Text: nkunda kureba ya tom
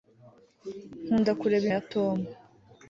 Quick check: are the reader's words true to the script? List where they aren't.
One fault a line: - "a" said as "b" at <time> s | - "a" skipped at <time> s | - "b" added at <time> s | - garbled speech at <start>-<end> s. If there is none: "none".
none